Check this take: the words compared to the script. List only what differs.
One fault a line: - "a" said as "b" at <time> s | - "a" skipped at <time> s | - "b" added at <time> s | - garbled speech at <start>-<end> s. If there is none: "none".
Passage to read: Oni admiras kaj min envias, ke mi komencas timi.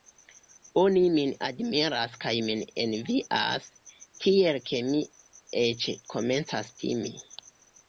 - "min" added at 1.1 s
- "tiel" added at 4.2 s
- "eĉ" added at 5.7 s